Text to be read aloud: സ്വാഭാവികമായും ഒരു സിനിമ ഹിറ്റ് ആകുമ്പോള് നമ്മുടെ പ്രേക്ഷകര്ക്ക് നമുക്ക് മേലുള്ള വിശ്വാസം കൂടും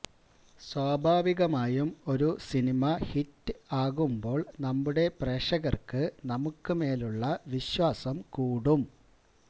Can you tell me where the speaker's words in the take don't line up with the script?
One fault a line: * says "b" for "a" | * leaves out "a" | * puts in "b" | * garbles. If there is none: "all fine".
all fine